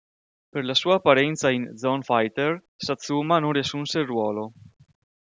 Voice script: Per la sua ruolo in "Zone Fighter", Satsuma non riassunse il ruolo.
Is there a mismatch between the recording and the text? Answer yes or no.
yes